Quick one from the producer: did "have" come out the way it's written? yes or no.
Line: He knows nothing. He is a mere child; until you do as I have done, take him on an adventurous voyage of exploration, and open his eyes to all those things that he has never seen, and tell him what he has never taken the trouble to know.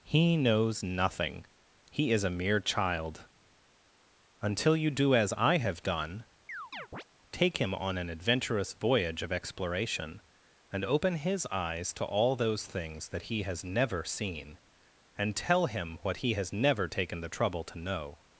yes